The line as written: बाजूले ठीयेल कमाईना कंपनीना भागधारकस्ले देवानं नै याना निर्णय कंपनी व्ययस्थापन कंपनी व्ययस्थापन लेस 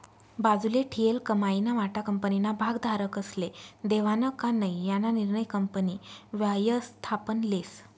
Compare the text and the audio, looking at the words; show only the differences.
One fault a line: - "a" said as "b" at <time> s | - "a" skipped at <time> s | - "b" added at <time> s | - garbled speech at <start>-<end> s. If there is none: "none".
- "वाटा" added at 1.7 s
- "का" added at 4.4 s
- "कंपनी व्ययस्थापन" skipped at 7.4 s